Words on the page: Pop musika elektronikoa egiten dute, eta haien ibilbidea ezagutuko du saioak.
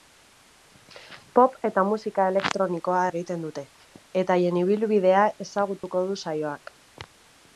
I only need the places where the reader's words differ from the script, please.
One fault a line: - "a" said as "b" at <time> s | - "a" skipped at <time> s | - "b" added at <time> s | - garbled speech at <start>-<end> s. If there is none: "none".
- "eta" added at 1.7 s